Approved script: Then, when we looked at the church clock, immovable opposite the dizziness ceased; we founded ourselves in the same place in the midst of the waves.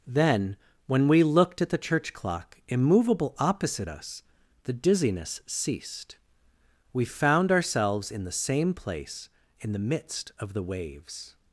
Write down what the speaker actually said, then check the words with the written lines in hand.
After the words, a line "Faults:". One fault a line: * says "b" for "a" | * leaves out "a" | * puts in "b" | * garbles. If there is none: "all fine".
Then, when we looked at the church clock, immovable opposite us, the dizziness ceased; we found ourselves in the same place in the midst of the waves.
Faults:
* puts in "us"
* says "found" for "founded"